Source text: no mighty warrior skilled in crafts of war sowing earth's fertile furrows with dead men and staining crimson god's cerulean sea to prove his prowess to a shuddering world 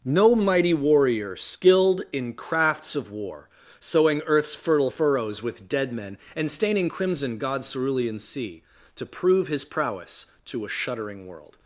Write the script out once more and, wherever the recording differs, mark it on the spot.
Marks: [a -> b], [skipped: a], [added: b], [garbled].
no mighty warrior skilled in crafts of war sowing earth's fertile furrows with dead men and staining crimson god's cerulean sea to prove his prowess to a shuddering world